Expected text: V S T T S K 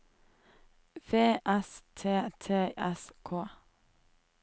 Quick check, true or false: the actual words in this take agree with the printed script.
true